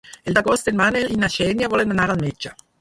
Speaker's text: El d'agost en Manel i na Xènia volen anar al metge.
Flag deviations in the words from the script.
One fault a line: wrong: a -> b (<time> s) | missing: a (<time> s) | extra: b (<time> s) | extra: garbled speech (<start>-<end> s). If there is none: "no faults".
no faults